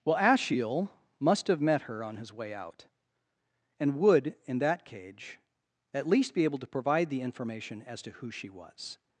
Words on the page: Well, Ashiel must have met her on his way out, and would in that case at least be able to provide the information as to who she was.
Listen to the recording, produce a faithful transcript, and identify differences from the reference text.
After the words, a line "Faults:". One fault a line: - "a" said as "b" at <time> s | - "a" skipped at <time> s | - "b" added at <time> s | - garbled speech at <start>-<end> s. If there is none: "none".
Well, Ashiel must have met her on his way out, and would in that cage at least be able to provide the information as to who she was.
Faults:
- "case" said as "cage" at 4.8 s